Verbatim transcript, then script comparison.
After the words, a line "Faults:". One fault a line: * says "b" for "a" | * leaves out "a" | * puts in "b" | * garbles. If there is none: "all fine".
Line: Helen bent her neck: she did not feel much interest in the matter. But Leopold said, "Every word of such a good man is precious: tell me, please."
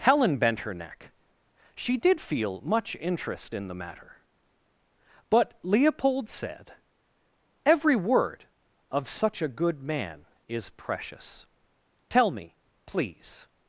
Helen bent her neck: she did feel much interest in the matter. But Leopold said, "Every word of such a good man is precious: tell me, please."
Faults:
* leaves out "not"